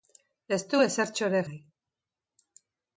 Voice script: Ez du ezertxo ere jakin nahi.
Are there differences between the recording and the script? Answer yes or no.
yes